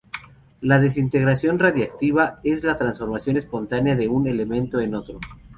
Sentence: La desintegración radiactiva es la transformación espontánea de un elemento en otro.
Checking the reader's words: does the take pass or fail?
pass